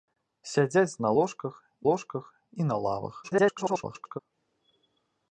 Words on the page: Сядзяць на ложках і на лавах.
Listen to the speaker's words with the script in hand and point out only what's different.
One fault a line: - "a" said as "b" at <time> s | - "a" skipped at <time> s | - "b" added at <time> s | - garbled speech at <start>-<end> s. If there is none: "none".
- "ложках" added at 1.9 s
- garbled speech at 3.2-4.2 s